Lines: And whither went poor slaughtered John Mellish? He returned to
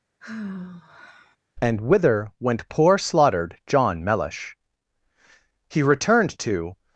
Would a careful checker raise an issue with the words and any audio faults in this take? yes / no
yes